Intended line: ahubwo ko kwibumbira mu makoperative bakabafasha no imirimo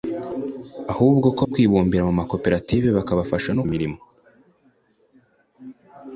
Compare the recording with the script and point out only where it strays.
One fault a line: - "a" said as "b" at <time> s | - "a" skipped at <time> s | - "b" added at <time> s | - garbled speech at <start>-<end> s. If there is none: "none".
none